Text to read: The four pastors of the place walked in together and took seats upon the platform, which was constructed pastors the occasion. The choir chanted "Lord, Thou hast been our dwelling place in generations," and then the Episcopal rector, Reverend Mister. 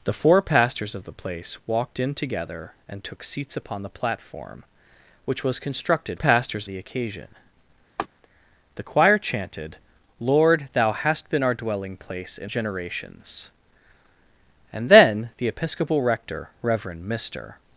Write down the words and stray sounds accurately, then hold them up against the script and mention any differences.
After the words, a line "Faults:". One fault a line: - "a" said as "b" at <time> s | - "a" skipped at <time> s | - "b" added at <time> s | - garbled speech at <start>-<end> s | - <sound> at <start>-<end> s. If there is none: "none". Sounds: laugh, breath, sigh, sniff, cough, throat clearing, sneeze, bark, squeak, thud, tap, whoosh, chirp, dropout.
The four pastors of the place walked in together and took seats upon the platform, which was constructed pastors the occasion. The choir chanted "Lord, Thou hast been our dwelling place in generations," and then the Episcopal rector, Reverend Mister.
Faults:
- laugh at 8.0-8.1 s